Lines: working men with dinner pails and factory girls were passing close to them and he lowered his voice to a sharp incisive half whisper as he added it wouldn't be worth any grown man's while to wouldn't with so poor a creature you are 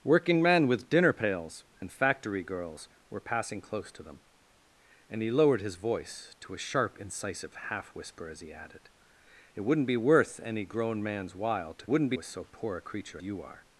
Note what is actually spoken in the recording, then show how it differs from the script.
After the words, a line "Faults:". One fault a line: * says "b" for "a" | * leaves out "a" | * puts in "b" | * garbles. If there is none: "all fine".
working men with dinner pails and factory girls were passing close to them and he lowered his voice to a sharp incisive half whisper as he added it wouldn't be worth any grown man's while to wouldn't with so poor a creature you are
Faults:
all fine